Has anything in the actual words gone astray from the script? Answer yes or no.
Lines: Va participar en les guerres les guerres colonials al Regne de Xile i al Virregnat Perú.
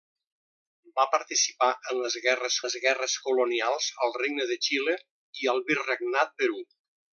no